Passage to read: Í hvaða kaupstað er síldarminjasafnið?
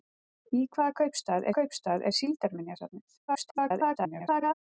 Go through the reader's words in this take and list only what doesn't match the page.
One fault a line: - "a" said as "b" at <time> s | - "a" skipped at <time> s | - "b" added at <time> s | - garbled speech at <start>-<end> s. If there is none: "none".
- "kaupstað" added at 1.6 s
- garbled speech at 3.3-4.5 s